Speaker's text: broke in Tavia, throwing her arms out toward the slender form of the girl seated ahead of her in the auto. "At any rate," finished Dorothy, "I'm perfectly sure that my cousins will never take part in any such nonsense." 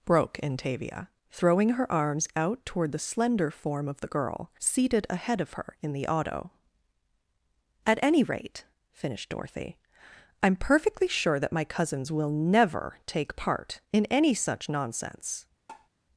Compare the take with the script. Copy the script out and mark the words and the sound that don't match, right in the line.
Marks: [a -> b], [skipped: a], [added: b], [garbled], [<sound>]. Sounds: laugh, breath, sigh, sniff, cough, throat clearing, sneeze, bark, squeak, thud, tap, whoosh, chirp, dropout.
broke in Tavia, throwing her arms out toward the slender form of the girl seated ahead of her in the auto. "At any rate," finished Dorothy, "I'm perfectly sure that my cousins will never take part in any such nonsense." [tap]